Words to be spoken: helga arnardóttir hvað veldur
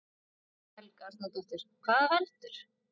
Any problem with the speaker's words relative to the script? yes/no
no